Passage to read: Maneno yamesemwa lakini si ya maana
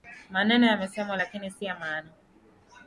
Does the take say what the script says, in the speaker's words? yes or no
yes